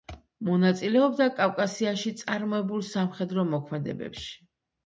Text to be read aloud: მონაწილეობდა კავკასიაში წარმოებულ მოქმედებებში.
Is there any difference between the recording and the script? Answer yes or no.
yes